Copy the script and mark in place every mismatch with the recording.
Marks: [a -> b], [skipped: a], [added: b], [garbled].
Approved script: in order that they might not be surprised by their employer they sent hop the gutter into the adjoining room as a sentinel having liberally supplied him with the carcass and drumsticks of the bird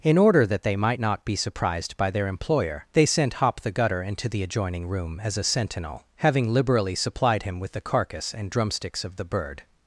in order that they might not be surprised by their employer they sent hop the gutter into the adjoining room as a sentinel having liberally supplied him with the carcass and drumsticks of the bird